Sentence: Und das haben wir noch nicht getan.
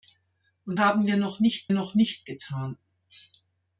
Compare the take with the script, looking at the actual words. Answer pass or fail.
fail